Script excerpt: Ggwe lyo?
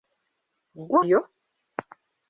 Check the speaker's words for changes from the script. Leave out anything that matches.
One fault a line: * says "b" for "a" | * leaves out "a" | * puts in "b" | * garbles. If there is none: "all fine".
all fine